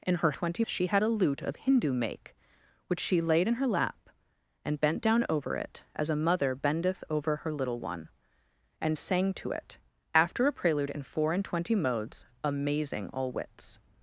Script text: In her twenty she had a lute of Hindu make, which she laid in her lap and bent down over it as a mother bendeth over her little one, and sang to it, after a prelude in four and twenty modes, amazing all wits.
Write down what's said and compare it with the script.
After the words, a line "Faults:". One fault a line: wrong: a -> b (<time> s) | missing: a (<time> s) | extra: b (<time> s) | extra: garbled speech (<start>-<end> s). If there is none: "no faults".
In her twenty she had a lute of Hindu make, which she laid in her lap and bent down over it as a mother bendeth over her little one, and sang to it, after a prelude in four and twenty modes, amazing all wits.
Faults:
no faults